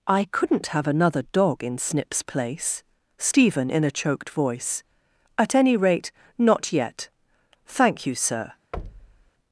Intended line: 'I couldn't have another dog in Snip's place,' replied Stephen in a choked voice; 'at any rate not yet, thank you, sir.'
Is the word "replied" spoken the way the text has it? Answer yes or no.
no